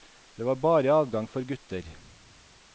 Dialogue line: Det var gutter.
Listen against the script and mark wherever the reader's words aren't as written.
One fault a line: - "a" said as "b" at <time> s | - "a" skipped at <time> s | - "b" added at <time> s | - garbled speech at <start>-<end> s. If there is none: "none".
- "bare adgang for" added at 0.6 s